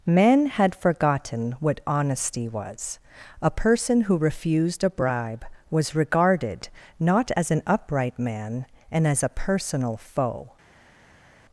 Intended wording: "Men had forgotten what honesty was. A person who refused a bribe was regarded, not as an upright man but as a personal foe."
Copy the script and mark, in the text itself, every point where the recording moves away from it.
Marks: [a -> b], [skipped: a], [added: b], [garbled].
"Men had forgotten what honesty was. A person who refused a bribe was regarded, not as an upright man [but -> and] as a personal foe."